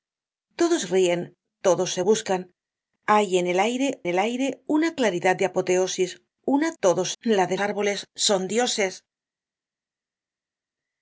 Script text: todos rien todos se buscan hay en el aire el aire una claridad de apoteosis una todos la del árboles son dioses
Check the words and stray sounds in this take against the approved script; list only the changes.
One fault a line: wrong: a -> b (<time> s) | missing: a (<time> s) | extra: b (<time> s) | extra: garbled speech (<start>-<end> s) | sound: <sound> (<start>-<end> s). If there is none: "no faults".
no faults